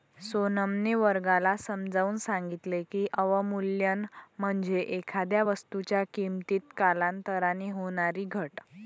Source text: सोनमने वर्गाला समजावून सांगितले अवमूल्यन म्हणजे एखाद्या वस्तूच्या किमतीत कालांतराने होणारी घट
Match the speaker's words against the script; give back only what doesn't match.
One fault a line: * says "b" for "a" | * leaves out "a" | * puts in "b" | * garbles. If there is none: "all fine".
* puts in "की"